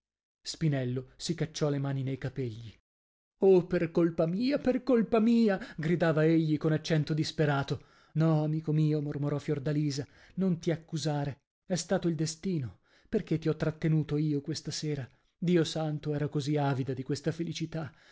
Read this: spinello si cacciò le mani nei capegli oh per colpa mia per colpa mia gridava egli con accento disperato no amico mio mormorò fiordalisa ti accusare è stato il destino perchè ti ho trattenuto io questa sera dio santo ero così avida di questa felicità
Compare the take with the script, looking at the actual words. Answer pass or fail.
fail